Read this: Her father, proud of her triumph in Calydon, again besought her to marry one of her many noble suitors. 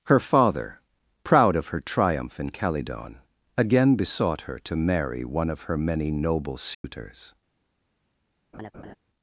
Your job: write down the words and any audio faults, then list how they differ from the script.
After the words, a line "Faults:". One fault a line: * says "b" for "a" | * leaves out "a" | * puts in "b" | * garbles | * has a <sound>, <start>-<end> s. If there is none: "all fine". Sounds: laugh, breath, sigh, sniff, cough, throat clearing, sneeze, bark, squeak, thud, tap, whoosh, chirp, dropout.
Her father, proud of her triumph in Calydon, again besought her to marry one of her many noble suitors.
Faults:
* has a dropout, 6.7-6.8 s
* has a laugh, 8.5-9.0 s